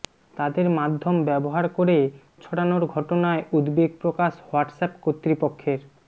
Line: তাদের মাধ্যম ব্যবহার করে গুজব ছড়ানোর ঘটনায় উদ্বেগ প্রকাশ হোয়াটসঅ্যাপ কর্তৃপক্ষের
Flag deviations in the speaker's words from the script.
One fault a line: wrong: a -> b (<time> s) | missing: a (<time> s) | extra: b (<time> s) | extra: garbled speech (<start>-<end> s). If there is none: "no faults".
missing: গুজব (2.0 s)